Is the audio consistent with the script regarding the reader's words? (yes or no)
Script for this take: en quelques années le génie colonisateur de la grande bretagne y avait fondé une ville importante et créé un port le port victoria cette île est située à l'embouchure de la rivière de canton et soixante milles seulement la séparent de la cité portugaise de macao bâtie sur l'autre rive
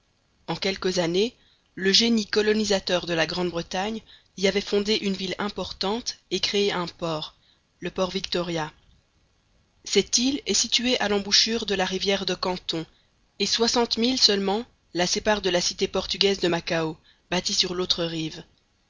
yes